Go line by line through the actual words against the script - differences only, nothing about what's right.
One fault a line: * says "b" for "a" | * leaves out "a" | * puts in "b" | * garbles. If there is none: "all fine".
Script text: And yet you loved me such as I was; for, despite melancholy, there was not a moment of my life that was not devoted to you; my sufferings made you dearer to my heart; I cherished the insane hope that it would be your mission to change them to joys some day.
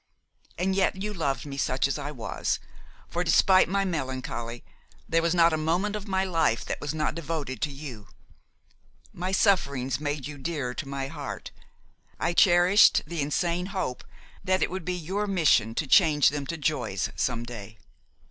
* puts in "my"